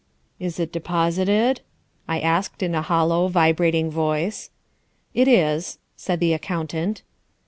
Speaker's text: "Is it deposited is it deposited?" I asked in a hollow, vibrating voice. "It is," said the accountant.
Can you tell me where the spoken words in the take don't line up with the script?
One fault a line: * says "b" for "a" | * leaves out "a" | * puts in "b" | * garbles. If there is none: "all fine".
* leaves out "is it deposited"